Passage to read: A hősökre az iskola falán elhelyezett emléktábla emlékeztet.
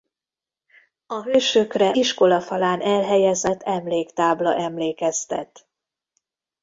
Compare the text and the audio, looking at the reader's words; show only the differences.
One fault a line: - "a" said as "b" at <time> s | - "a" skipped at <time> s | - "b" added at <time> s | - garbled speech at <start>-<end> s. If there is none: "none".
- "az" skipped at 1.9 s